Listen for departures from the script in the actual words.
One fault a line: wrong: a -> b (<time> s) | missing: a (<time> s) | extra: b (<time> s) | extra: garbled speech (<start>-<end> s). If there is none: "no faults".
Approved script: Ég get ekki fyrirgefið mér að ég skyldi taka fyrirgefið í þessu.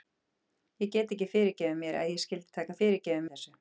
no faults